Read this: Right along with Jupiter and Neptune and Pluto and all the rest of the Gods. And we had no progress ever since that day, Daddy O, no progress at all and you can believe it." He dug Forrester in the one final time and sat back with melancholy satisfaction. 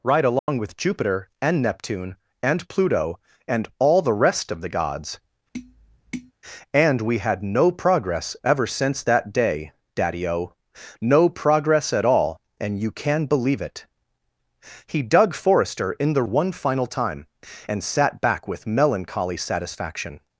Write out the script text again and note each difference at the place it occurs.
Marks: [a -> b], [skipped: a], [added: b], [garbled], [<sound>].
Right along [dropout] with Jupiter and Neptune and Pluto and all the rest of the Gods. [tap] And we had no progress ever since that day, Daddy O, no progress at all and you can believe it." He dug Forrester in the one final time and sat back with melancholy satisfaction.